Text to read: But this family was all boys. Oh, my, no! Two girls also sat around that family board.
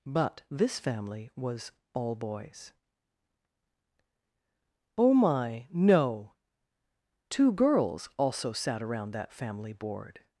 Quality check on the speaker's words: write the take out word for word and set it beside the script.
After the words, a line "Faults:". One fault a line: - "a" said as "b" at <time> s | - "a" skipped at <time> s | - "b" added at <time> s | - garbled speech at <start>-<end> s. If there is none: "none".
But this family was all boys. Oh, my, no! Two girls also sat around that family board.
Faults:
none